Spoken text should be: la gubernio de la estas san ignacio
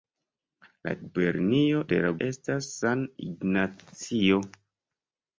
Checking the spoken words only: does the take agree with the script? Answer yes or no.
yes